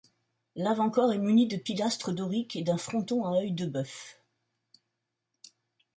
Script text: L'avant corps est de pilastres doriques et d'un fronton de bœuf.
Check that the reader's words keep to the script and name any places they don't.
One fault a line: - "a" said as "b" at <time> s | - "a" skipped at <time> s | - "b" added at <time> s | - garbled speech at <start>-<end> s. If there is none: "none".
- "muni" added at 1.2 s
- "à œil" added at 3.2 s